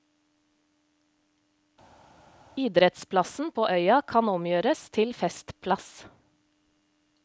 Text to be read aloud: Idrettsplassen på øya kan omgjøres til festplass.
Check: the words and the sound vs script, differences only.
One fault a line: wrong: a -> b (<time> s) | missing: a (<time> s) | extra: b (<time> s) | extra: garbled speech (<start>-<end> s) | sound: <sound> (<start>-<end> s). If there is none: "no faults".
no faults